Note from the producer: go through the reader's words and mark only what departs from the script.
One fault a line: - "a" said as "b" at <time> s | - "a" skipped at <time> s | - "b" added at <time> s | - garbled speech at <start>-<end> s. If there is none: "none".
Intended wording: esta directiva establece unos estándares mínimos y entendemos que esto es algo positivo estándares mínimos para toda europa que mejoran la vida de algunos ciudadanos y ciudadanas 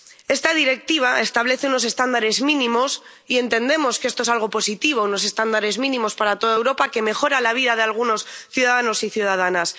- "unos" added at 5.1 s